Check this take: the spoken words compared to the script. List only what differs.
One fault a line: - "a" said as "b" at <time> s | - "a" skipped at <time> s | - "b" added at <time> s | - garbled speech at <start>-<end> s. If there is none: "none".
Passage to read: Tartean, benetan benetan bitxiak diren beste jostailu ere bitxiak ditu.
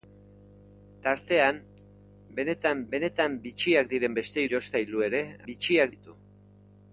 none